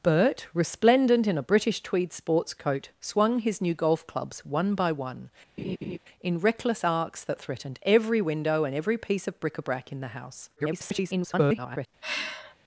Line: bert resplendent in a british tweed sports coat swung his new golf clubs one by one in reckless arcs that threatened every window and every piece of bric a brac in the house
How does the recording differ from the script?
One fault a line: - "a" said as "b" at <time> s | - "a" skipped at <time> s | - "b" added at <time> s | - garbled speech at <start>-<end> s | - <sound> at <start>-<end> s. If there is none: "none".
- laugh at 5.6-6.0 s
- garbled speech at 10.6-11.9 s
- sigh at 12.0-12.6 s